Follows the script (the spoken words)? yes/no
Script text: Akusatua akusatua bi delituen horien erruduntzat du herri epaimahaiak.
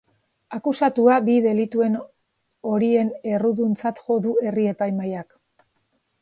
no